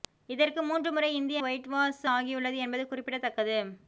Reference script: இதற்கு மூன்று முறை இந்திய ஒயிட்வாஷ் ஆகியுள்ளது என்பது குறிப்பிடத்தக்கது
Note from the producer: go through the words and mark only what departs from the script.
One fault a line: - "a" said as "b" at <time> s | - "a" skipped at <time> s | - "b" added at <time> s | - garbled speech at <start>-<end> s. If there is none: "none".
none